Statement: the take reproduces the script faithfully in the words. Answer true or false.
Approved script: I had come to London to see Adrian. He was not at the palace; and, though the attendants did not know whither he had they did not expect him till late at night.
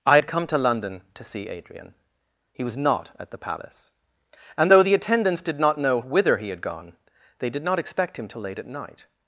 false